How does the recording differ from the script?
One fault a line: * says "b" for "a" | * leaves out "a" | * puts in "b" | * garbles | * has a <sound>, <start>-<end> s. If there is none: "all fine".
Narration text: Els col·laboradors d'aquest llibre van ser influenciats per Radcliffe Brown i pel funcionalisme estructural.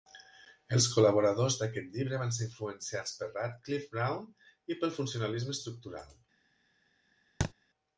* has a thud, 7.4-7.5 s